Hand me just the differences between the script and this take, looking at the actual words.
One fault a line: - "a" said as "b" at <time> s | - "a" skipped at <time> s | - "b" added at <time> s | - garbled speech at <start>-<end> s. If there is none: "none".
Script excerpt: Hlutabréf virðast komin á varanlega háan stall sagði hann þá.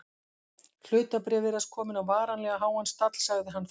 none